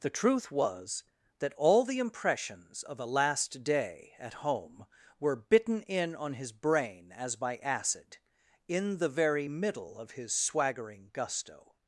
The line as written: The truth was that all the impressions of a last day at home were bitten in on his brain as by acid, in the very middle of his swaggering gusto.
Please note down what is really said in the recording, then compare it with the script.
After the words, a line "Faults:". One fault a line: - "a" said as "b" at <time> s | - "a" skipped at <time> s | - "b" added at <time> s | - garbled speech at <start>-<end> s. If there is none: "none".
The truth was that all the impressions of a last day at home were bitten in on his brain as by acid, in the very middle of his swaggering gusto.
Faults:
none